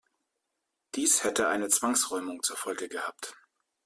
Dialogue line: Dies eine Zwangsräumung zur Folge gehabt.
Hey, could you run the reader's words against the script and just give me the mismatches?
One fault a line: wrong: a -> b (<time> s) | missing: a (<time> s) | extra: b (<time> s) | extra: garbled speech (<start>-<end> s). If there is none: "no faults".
extra: hätte (1.2 s)